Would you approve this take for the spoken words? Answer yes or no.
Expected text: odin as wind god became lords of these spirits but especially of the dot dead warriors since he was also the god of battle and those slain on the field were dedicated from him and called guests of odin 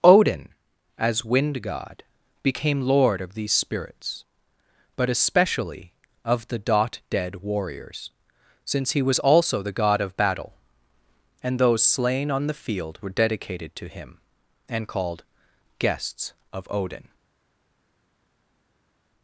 no